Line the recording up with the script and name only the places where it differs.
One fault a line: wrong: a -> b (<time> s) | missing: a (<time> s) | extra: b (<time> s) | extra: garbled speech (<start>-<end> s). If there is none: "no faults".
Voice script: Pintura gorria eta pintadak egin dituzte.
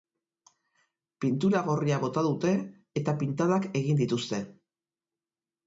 extra: bota dute (2.0 s)